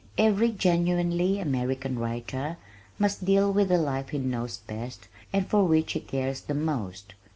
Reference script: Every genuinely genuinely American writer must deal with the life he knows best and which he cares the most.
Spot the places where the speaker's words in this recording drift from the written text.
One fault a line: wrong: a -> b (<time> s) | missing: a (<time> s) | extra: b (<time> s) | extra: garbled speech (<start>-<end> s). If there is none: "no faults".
missing: genuinely (1.4 s)
extra: for (5.5 s)